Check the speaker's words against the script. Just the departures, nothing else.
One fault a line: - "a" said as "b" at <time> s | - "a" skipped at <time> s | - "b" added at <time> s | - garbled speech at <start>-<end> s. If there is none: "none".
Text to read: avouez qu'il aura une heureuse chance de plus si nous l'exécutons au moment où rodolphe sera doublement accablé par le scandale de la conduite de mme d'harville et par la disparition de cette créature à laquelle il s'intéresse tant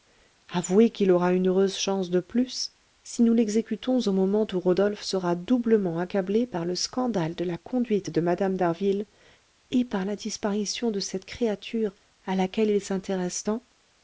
none